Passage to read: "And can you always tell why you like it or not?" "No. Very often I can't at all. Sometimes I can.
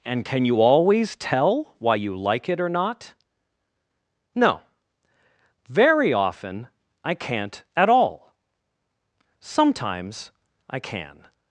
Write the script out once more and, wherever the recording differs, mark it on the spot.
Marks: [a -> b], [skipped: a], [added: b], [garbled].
"And can you always tell why you like it or not?" "No. Very often I can't at all. Sometimes I can.